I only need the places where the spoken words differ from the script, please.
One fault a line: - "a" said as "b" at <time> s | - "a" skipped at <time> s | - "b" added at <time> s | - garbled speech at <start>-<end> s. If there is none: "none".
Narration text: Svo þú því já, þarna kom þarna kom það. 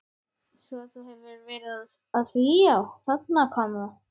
- "hefur verið að" added at 1.1 s
- "þarna kom" skipped at 3.8 s